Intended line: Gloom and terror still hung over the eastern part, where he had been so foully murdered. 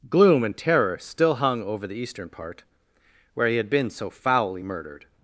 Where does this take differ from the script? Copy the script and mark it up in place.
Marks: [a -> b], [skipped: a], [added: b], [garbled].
Gloom and terror still hung over the eastern part, where he had been so foully murdered.